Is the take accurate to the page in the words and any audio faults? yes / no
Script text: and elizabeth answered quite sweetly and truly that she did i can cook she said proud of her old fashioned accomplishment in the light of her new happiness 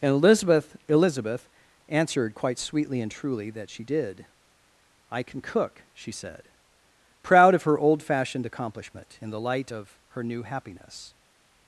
no